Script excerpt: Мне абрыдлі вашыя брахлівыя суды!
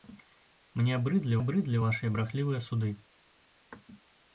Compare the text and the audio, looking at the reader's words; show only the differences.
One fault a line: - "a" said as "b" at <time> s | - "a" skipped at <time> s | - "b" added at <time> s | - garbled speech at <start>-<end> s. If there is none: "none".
- "абрыдлі" added at 1.4 s